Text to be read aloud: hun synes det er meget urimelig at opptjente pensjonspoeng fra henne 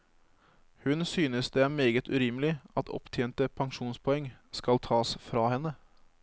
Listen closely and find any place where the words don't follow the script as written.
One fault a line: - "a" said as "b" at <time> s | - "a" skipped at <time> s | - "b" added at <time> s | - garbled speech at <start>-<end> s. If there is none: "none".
- "skal tas" added at 4.5 s